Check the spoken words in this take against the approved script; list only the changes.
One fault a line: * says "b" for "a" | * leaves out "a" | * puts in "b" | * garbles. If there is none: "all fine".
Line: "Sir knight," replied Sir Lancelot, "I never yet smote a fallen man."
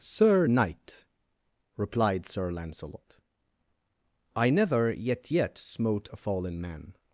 * puts in "yet"